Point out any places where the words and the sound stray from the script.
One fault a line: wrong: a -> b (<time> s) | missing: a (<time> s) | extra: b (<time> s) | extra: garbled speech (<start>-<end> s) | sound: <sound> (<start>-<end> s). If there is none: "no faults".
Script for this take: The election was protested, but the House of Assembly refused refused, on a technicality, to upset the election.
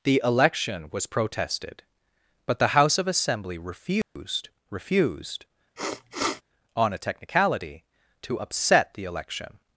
sound: dropout (4.0-4.2 s)
sound: sniff (5.8-6.4 s)